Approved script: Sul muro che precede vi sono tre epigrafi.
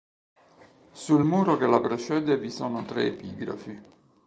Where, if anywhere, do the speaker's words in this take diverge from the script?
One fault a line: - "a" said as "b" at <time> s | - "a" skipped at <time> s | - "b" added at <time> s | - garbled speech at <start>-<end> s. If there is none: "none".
- "la" added at 1.7 s